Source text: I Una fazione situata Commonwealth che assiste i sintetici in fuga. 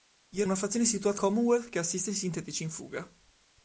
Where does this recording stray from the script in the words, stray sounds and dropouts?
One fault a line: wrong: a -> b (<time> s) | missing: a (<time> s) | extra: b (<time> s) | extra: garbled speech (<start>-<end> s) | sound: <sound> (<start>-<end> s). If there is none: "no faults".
no faults